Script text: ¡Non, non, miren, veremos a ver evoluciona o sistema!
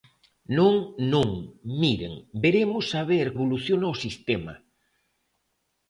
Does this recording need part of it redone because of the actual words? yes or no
no